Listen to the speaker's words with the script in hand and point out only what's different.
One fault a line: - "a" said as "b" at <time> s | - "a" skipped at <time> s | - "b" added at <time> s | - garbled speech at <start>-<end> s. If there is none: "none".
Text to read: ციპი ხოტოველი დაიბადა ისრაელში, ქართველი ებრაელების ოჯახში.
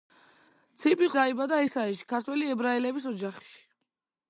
- "ხოტოველი" skipped at 1.1 s